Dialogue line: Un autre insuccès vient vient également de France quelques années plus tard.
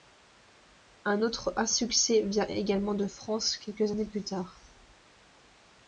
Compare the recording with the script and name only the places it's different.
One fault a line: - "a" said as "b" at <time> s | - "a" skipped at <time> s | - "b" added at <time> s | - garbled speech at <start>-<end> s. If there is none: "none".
- "vient" skipped at 2.5 s